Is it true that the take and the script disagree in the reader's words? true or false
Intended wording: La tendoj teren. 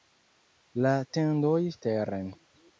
false